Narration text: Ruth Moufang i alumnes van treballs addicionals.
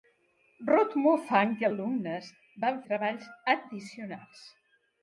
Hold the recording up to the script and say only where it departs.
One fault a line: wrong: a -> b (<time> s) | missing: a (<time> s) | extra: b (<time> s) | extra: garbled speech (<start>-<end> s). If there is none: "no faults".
no faults